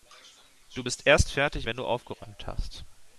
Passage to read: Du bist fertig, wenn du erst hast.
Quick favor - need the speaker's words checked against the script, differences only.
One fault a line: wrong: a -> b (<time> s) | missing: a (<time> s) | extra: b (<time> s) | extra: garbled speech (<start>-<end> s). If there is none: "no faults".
extra: erst (1.1 s)
wrong: erst -> aufgeräumt (1.8 s)